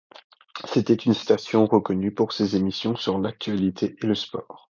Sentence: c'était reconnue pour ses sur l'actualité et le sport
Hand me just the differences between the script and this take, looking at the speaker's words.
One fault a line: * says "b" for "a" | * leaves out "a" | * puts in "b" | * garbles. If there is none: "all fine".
* puts in "une station"
* puts in "émissions"